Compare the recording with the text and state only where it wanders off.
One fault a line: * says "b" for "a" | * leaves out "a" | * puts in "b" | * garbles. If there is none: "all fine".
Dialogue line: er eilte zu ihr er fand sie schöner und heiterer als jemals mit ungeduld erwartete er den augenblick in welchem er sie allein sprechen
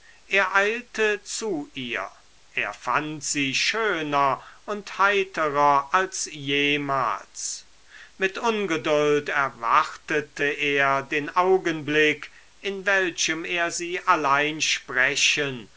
all fine